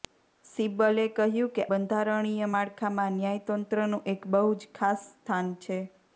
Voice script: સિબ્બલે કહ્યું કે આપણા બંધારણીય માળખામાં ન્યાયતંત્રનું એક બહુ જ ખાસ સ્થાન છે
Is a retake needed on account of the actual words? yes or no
yes